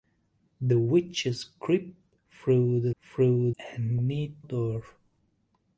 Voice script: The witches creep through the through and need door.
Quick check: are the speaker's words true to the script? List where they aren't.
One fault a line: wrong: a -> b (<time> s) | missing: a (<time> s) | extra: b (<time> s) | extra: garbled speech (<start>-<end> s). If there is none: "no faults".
no faults